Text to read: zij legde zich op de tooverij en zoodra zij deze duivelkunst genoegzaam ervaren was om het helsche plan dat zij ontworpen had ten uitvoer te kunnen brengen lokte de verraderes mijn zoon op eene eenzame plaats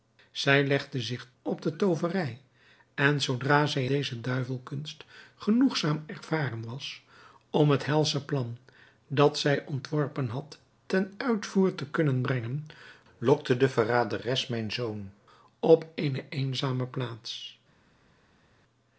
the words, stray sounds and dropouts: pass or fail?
pass